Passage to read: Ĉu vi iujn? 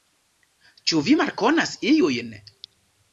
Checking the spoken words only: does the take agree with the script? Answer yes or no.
no